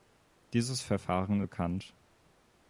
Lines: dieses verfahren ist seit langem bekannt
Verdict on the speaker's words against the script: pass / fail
fail